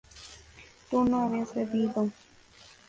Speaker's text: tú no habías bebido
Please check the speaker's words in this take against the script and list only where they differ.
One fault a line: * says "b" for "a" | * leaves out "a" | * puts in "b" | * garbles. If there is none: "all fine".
all fine